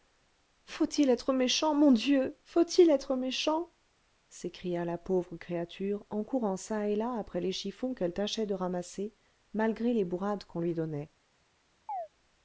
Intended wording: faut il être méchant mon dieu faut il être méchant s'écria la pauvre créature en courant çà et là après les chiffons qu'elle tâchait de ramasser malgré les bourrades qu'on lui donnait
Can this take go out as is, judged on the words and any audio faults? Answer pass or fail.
fail